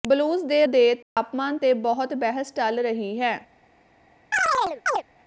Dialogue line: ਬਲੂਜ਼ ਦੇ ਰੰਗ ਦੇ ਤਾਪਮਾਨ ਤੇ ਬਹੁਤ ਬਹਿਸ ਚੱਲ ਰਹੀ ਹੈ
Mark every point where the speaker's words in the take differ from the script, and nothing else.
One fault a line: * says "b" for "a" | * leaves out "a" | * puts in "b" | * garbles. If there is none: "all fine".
* leaves out "ਰੰਗ"